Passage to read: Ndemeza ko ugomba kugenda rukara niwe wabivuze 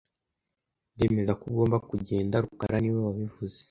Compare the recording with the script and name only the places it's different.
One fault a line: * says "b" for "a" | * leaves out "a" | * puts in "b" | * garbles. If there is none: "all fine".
all fine